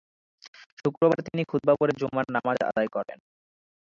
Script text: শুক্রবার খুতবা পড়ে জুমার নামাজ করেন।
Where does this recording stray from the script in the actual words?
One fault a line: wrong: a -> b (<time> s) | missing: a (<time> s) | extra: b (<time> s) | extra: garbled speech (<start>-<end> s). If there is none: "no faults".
extra: তিনি (1.3 s)
extra: আদায় (2.7 s)